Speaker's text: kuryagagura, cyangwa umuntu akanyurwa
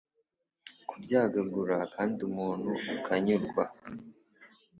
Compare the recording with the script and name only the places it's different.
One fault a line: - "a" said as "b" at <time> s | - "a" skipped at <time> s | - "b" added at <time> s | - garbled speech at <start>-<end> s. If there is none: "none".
- "cyangwa" said as "kandi" at 1.9 s